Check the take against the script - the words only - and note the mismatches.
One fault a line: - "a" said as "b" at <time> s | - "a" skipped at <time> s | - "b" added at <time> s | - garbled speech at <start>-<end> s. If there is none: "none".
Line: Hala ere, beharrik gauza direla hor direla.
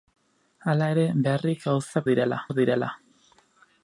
none